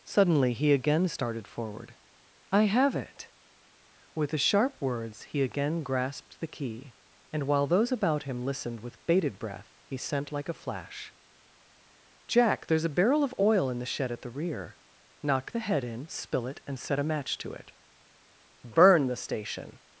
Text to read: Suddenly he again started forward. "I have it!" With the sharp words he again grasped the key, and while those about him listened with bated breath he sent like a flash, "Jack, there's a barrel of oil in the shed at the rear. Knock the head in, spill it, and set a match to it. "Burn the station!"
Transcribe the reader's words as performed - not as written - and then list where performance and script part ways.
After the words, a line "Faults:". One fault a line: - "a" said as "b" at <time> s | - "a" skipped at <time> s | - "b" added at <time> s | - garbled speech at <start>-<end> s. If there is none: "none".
Suddenly he again started forward. "I have it!" With the sharp words he again grasped the key, and while those about him listened with bated breath he sent like a flash, "Jack, there's a barrel of oil in the shed at the rear. Knock the head in, spill it, and set a match to it. "Burn the station!"
Faults:
none